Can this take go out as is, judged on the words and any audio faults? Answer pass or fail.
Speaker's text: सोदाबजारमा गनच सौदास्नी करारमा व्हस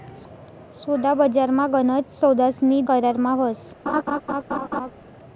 fail